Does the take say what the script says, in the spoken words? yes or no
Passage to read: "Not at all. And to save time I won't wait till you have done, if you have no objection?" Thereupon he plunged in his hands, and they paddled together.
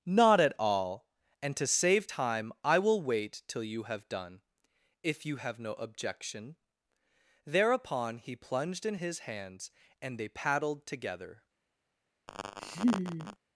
no